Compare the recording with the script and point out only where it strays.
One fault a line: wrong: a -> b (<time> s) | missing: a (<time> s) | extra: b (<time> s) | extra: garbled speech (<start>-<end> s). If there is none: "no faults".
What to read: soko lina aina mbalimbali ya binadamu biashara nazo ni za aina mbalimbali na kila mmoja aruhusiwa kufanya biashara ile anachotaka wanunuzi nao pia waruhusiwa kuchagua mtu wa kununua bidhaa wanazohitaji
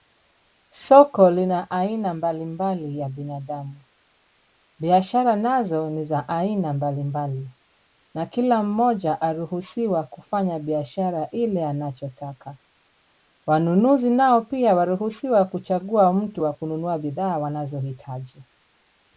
no faults